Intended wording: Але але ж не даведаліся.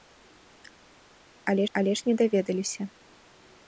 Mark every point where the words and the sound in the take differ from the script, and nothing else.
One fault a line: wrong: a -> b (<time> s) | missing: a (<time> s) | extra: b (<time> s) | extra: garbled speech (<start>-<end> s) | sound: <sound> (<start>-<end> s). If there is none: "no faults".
no faults